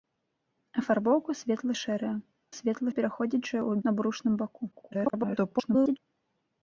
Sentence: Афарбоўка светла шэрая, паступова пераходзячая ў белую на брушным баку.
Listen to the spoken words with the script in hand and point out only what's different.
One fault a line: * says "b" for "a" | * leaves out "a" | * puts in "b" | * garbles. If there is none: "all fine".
* says "светла" for "паступова"
* leaves out "белую"
* garbles